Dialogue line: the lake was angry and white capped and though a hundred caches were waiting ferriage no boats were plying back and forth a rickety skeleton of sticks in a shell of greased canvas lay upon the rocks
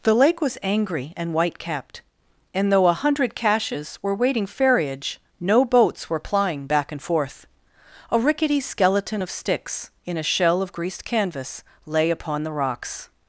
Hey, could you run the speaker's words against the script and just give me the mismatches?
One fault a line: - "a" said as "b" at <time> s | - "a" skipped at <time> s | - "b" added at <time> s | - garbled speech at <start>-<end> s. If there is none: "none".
none